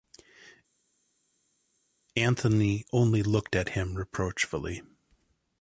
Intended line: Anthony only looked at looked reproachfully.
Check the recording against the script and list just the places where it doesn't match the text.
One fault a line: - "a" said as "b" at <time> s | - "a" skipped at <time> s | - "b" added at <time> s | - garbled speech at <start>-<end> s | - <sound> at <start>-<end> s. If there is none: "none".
- "looked" said as "him" at 3.7 s